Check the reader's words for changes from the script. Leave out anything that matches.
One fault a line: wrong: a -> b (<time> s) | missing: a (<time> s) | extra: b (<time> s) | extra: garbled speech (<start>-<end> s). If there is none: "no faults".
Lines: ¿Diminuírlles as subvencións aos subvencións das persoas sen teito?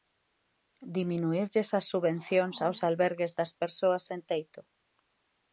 wrong: subvencións -> albergues (2.9 s)